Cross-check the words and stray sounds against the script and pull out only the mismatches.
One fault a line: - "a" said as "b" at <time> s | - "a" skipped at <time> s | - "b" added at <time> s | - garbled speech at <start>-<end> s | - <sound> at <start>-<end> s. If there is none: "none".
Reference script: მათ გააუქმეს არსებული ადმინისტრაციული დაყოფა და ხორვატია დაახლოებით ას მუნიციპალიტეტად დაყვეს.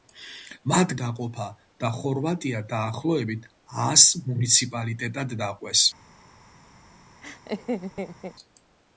- "გააუქმეს არსებული ადმინისტრაციული" skipped at 0.9 s
- laugh at 7.2-8.4 s